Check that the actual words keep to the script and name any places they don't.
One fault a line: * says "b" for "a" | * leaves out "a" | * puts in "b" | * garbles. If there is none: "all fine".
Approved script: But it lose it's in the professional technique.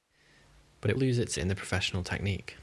all fine